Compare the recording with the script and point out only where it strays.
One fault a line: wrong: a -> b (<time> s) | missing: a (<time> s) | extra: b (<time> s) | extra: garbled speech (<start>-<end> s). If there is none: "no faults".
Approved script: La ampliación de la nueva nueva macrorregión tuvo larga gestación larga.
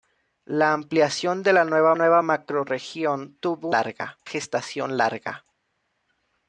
no faults